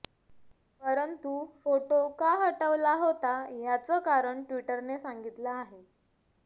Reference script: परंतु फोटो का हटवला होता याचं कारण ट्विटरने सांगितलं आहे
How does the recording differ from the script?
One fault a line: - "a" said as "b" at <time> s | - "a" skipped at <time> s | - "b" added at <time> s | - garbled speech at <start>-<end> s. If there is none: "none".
none